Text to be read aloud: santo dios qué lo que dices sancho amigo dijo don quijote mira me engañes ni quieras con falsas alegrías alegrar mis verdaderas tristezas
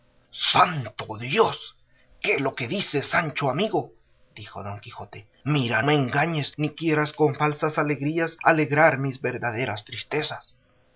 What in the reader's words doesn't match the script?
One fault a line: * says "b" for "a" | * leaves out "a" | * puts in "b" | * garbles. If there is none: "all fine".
all fine